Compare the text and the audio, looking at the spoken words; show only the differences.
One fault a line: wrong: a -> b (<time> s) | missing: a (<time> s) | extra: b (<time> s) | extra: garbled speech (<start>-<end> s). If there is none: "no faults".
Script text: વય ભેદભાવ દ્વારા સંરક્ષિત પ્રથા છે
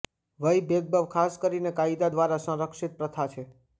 extra: ખાસ કરીને કાયદા (1.1 s)